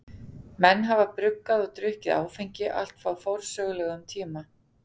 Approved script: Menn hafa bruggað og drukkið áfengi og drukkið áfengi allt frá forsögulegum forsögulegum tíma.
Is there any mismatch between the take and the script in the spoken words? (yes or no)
yes